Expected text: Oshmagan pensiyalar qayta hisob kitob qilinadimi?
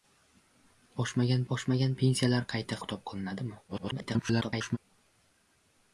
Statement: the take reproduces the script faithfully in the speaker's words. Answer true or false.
false